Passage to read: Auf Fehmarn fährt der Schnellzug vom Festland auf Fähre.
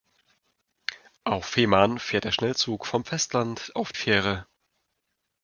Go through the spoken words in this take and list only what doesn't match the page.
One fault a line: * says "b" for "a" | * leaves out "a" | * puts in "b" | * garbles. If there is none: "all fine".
all fine